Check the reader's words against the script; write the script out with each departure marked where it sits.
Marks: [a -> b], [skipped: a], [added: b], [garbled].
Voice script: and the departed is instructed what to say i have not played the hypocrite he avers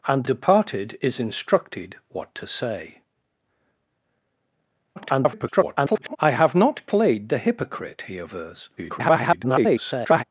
and [skipped: the] departed is instructed what to say [garbled] i have not played the hypocrite he avers [garbled]